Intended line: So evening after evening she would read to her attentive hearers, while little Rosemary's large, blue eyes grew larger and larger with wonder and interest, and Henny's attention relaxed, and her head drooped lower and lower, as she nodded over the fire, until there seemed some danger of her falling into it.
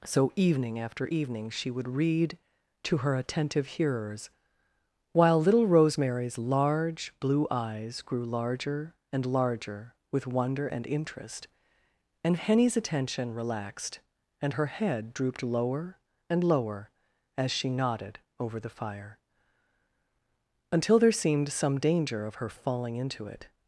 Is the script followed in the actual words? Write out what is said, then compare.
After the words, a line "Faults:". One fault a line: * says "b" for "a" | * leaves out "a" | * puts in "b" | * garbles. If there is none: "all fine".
So evening after evening she would read to her attentive hearers, while little Rosemary's large, blue eyes grew larger and larger with wonder and interest, and Henny's attention relaxed, and her head drooped lower and lower, as she nodded over the fire, until there seemed some danger of her falling into it.
Faults:
all fine